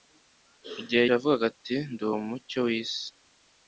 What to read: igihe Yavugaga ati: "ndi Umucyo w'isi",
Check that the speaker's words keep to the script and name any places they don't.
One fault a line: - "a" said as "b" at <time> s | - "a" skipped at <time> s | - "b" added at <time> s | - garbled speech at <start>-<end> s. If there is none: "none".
none